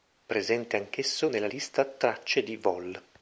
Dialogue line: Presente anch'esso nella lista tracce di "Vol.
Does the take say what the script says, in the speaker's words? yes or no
yes